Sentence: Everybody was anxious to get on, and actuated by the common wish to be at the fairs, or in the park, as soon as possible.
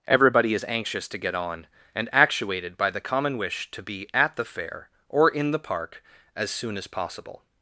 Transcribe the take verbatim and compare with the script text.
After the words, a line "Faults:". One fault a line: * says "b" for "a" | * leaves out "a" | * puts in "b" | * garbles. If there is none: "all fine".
Everybody is anxious to get on, and actuated by the common wish to be at the fair, or in the park, as soon as possible.
Faults:
* says "is" for "was"
* says "fair" for "fairs"